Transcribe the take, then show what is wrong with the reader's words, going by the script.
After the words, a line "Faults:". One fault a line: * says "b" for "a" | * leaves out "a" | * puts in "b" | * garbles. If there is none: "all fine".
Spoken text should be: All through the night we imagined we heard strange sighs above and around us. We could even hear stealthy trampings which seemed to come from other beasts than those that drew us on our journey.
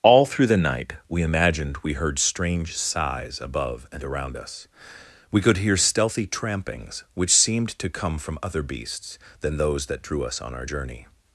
All through the night we imagined we heard strange sighs above and around us. We could hear stealthy trampings which seemed to come from other beasts than those that drew us on our journey.
Faults:
* leaves out "even"